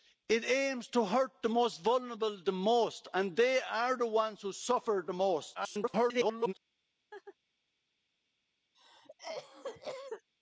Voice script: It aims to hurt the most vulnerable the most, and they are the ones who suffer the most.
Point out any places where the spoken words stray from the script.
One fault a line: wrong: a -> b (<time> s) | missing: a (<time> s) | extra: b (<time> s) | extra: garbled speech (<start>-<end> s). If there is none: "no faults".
extra: garbled speech (5.5-6.5 s)